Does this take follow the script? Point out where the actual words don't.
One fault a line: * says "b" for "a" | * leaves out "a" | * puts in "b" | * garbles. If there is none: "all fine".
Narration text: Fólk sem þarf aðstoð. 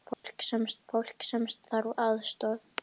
* puts in "fólk sem"